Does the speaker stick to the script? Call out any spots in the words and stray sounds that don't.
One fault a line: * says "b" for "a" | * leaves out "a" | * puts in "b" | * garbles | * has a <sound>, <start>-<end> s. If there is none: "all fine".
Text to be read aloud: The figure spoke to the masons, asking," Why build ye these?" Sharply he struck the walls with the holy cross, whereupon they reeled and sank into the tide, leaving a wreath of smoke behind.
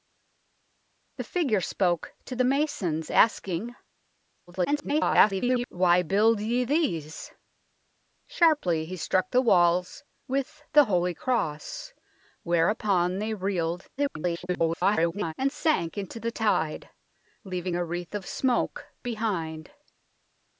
* garbles
* garbles